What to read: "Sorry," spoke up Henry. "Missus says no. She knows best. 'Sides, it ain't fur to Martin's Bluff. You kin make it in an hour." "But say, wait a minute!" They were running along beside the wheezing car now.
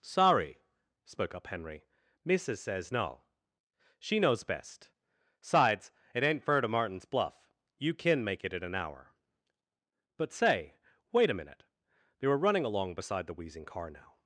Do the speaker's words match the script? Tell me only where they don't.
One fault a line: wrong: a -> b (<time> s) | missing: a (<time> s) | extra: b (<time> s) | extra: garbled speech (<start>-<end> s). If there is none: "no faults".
no faults